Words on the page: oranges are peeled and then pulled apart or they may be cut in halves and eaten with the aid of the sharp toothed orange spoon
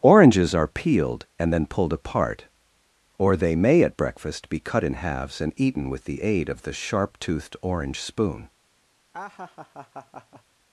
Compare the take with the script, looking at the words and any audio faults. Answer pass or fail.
fail